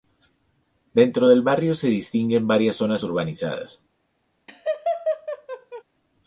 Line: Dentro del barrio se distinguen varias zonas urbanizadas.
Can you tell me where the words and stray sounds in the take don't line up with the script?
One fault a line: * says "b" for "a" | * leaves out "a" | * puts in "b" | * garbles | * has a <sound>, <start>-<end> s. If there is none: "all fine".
* has a laugh, 4.5-5.8 s